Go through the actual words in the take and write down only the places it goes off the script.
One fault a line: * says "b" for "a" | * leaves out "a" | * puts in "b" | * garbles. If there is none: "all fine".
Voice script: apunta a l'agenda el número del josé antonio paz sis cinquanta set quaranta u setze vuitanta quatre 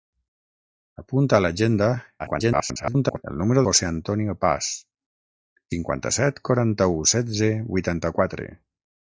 * garbles
* leaves out "del"
* leaves out "sis"